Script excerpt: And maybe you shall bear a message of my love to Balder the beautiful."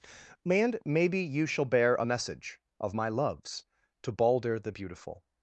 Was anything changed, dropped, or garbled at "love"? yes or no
yes